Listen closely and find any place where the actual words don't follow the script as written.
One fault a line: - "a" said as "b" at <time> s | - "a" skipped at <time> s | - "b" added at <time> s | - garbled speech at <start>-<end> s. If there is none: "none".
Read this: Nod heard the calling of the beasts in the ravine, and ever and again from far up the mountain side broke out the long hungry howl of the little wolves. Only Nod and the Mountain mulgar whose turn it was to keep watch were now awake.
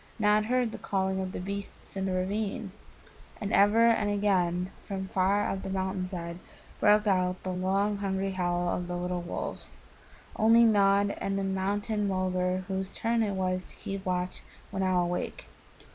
none